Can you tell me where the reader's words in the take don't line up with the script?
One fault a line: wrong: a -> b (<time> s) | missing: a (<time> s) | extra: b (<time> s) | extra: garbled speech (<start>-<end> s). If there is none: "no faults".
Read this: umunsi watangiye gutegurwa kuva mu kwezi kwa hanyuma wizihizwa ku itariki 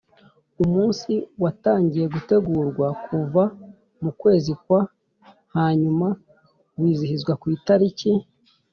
no faults